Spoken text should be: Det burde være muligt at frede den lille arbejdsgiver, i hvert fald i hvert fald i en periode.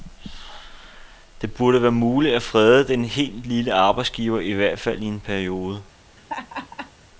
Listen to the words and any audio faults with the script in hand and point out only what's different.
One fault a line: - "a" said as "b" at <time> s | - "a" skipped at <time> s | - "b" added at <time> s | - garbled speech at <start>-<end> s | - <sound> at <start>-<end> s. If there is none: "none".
- "helt" added at 3.0 s
- "hvert fald i" skipped at 5.1 s
- laugh at 6.2-6.9 s